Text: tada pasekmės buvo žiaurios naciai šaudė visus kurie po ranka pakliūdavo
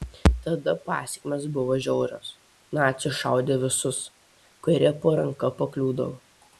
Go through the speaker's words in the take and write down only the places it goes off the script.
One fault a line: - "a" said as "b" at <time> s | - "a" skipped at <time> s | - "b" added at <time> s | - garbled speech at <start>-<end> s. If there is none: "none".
none